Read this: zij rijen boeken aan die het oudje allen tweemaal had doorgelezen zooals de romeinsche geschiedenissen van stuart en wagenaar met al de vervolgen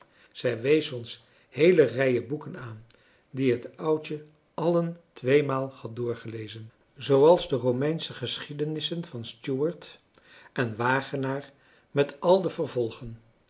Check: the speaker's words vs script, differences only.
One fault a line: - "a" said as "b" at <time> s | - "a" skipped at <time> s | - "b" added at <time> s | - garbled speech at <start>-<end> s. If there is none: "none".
- "wees ons heele" added at 0.6 s